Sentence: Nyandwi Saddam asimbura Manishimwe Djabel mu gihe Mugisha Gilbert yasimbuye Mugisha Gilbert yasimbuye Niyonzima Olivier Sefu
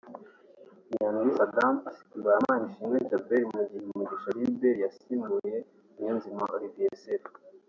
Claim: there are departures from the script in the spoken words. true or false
true